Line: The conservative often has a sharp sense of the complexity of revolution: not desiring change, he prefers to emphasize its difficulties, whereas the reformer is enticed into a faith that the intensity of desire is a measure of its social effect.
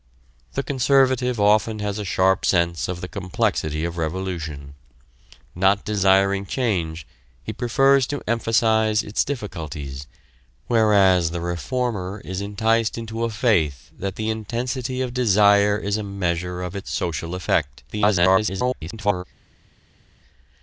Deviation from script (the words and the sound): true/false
true